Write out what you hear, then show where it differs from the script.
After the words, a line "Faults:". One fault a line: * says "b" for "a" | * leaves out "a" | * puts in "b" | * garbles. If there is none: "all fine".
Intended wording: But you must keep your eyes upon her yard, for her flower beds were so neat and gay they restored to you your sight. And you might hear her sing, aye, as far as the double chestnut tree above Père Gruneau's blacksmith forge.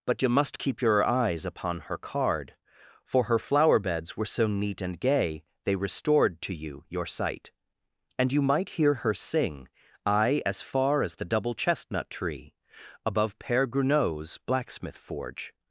But you must keep your eyes upon her card, for her flower beds were so neat and gay they restored to you your sight. And you might hear her sing, aye, as far as the double chestnut tree above Père Gruneau's blacksmith forge.
Faults:
* says "card" for "yard"